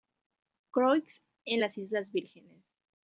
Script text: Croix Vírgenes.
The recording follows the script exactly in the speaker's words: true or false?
false